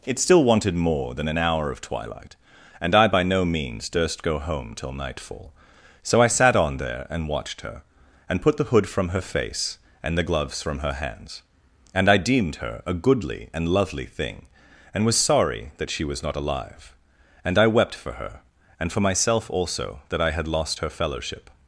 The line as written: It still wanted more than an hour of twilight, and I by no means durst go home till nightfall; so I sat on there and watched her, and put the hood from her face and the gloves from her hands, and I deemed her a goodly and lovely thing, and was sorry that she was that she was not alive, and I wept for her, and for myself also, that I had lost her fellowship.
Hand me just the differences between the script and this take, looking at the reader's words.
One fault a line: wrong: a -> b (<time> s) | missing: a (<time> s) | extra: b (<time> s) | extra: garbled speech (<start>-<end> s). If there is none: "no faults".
missing: that she was (16.2 s)